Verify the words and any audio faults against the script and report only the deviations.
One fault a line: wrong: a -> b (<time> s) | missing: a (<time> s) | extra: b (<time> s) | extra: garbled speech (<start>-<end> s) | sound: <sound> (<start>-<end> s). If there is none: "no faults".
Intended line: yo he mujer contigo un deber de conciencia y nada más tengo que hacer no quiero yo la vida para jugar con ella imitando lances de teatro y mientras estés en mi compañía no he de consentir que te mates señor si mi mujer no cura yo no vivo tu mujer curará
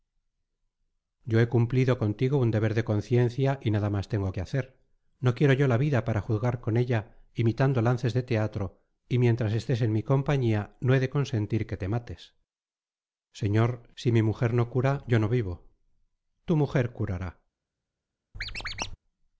wrong: mujer -> cumplido (1.5 s)
sound: squeak (18.3-19.0 s)